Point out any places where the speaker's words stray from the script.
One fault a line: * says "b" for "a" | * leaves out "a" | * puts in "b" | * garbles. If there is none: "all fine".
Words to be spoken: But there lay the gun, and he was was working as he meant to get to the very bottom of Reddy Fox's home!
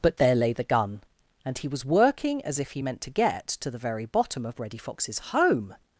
* leaves out "was"
* puts in "if"